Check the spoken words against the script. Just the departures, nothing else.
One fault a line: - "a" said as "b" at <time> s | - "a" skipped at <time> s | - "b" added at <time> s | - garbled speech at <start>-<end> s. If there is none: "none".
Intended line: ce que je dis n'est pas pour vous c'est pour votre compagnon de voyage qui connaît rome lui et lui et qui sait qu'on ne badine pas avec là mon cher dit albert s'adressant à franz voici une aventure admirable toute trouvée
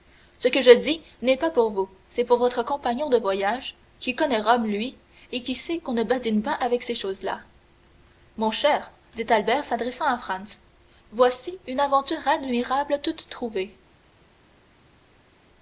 - "lui et" skipped at 5.4 s
- "ces choses" added at 6.8 s